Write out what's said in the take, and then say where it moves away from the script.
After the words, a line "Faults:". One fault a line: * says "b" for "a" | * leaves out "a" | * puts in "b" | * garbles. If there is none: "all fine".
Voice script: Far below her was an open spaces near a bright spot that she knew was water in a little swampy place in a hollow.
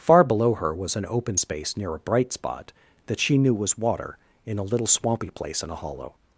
Far below her was an open space near a bright spot that she knew was water in a little swampy place in a hollow.
Faults:
* says "space" for "spaces"